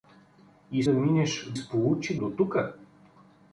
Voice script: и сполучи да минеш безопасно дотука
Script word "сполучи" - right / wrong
wrong